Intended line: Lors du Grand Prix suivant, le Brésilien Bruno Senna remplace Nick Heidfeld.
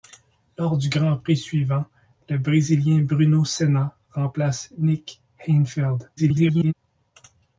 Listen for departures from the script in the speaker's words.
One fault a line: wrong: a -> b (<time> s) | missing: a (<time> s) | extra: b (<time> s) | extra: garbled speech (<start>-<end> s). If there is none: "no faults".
extra: garbled speech (6.2-6.7 s)